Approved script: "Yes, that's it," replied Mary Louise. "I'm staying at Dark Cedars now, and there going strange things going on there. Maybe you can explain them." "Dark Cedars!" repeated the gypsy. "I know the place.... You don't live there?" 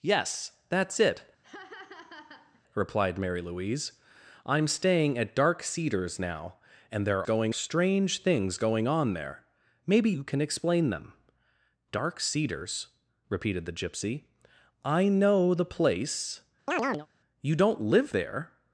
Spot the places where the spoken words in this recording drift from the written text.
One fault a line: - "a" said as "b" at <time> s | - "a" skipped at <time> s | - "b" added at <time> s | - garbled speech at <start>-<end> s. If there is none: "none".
none